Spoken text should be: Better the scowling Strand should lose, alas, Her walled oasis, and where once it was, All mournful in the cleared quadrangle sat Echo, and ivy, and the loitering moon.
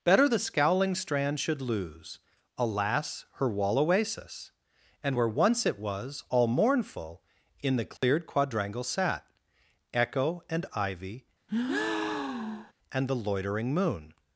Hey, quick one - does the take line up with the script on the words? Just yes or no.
no